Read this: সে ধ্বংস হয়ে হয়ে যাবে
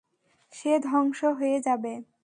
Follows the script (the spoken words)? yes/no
no